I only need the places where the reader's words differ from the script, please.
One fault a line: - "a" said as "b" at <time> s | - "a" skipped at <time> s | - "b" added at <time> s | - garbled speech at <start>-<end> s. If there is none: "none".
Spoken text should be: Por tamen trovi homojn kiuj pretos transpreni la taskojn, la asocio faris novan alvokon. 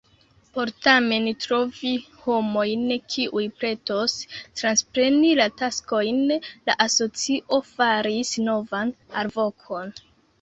none